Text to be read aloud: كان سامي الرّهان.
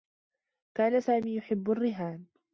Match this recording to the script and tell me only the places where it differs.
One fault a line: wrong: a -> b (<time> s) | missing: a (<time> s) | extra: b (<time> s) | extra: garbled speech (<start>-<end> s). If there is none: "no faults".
extra: يحبّ (1.4 s)